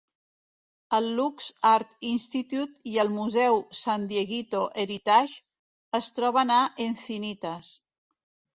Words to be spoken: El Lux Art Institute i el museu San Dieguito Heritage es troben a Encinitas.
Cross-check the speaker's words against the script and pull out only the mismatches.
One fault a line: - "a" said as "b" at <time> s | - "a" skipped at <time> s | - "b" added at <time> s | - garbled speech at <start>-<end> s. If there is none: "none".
none